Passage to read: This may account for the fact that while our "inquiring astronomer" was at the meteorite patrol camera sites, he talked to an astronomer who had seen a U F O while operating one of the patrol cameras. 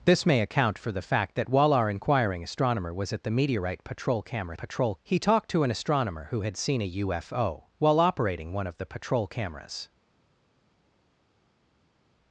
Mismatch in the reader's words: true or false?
true